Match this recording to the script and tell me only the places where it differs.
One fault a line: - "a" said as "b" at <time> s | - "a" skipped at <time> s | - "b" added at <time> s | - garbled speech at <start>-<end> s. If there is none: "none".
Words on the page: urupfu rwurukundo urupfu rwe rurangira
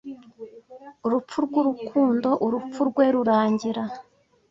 none